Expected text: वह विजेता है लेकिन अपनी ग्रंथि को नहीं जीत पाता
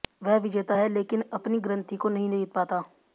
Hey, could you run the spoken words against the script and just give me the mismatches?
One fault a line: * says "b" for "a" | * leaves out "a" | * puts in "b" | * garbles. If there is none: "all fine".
all fine